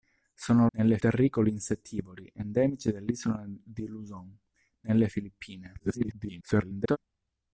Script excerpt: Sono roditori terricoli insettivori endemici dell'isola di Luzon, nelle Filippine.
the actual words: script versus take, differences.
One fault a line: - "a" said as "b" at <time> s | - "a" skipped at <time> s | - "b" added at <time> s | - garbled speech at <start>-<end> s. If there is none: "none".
- "roditori" said as "nelle" at 0.7 s
- garbled speech at 5.8-7.0 s